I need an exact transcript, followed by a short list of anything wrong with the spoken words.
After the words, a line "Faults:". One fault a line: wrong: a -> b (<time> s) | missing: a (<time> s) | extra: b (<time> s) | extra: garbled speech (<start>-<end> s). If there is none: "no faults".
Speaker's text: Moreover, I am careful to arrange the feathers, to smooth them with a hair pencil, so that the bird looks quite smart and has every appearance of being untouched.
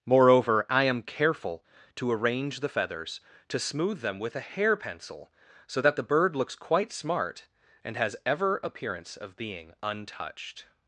Moreover, I am careful to arrange the feathers, to smooth them with a hair pencil, so that the bird looks quite smart and has ever appearance of being untouched.
Faults:
wrong: every -> ever (8.2 s)